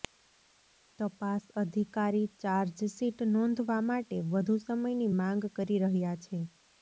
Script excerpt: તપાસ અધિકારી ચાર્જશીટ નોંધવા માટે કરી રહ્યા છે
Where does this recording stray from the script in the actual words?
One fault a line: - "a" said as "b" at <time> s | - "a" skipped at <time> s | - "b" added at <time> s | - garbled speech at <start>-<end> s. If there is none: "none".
- "વધુ સમયની માંગ" added at 4.3 s